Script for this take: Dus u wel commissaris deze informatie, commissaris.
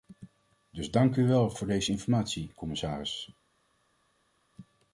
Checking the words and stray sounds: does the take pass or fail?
fail